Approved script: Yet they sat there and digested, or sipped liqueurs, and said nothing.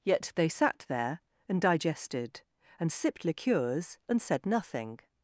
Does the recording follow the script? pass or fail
fail